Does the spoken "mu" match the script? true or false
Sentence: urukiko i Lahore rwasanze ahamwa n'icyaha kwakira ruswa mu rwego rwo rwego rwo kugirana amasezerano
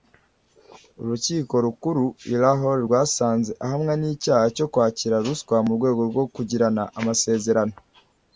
true